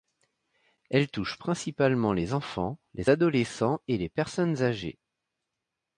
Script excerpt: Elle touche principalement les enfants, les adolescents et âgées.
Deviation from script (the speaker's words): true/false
true